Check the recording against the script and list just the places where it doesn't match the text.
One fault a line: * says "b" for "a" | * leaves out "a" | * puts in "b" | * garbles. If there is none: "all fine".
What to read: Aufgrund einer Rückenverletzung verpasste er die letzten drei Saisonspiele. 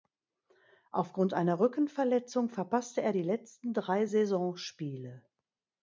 all fine